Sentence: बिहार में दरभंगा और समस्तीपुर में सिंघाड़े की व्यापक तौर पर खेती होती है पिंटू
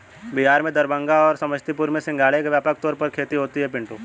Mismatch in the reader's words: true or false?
false